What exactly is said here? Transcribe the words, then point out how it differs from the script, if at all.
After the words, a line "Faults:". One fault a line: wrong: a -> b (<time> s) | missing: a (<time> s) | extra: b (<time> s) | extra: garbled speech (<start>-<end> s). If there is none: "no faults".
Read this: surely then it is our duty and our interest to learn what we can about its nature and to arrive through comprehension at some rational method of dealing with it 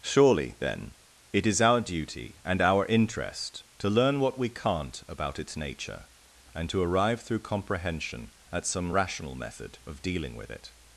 surely then it is our duty and our interest to learn what we can't about its nature and to arrive through comprehension at some rational method of dealing with it
Faults:
wrong: can -> can't (4.5 s)